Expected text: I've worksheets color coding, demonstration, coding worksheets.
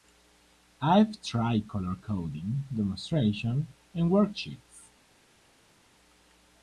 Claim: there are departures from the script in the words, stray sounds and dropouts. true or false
true